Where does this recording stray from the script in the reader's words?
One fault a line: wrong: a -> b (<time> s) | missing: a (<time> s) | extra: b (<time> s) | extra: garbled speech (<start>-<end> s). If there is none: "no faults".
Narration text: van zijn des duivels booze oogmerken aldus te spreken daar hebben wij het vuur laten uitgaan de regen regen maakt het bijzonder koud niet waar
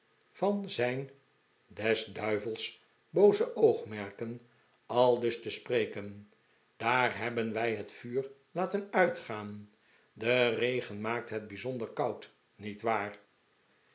missing: regen (11.0 s)